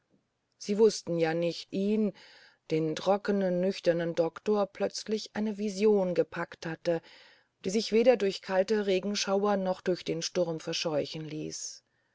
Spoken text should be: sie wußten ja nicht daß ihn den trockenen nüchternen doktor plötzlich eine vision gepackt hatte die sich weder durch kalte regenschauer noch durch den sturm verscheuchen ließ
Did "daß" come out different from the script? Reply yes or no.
yes